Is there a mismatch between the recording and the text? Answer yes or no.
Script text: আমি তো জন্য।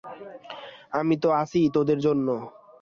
yes